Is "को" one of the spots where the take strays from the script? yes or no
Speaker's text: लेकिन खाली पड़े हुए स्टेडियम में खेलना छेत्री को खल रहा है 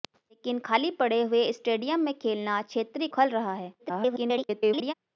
yes